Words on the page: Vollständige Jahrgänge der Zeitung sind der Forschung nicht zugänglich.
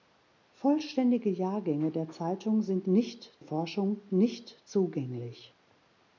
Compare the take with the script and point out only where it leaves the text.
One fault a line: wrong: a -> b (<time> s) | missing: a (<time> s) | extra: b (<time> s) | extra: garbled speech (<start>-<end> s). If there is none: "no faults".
wrong: der -> nicht (2.8 s)